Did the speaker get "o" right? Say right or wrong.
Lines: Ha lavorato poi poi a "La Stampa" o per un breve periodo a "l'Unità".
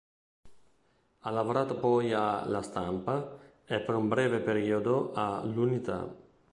wrong